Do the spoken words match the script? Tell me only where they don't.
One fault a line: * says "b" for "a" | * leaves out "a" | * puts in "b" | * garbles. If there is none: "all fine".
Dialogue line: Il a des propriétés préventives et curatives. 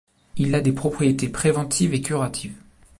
all fine